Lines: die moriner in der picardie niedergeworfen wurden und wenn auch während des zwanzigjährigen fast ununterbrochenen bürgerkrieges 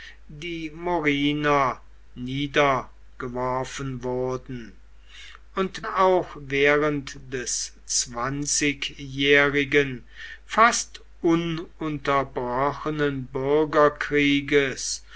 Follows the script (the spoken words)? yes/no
no